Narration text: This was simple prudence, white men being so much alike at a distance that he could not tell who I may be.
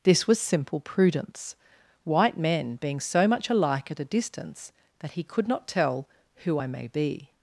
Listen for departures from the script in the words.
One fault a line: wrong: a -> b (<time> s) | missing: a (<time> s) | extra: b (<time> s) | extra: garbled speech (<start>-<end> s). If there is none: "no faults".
no faults